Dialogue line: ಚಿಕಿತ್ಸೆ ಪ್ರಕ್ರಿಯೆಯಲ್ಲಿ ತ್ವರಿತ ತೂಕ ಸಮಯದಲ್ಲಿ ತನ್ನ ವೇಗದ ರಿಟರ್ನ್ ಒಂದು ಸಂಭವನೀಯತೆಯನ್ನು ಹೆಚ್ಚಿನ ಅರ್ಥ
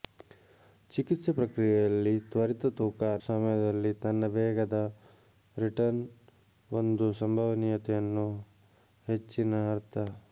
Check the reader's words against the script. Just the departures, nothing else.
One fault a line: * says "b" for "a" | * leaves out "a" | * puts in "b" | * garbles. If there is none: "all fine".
all fine